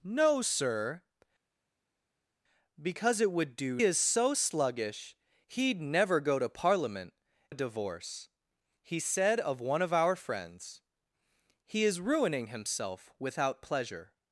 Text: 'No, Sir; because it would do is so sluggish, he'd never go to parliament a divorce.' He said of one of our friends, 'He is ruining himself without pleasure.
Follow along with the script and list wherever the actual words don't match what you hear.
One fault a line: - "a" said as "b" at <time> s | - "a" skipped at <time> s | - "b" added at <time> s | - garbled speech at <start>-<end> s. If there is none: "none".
none